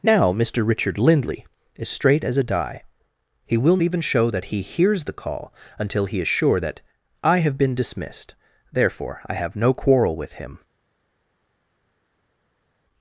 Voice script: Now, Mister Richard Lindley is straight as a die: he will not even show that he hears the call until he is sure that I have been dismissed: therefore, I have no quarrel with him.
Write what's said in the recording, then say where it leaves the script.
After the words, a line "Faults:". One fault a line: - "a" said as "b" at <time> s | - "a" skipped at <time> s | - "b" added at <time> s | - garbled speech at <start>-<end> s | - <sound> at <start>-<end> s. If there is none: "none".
Now, Mister Richard Lindley is straight as a die: he will even show that he hears the call until he is sure that I have been dismissed: therefore, I have no quarrel with him.
Faults:
- "not" skipped at 3.8 s